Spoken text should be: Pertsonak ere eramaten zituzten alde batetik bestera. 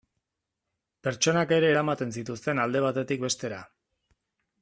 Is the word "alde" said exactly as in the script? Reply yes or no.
yes